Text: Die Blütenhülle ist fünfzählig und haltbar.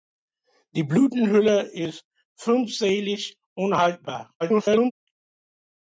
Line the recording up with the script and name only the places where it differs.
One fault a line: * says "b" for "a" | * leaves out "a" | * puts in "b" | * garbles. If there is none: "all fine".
* garbles